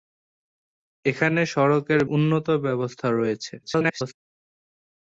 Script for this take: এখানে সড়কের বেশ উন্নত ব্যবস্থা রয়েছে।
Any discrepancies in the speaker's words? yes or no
yes